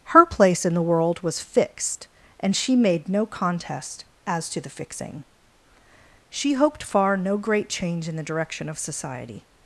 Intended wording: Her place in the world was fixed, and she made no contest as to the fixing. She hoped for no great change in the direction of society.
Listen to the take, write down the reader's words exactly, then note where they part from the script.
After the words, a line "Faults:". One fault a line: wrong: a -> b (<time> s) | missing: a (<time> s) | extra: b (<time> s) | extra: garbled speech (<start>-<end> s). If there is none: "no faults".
Her place in the world was fixed, and she made no contest as to the fixing. She hoped far no great change in the direction of society.
Faults:
wrong: for -> far (6.8 s)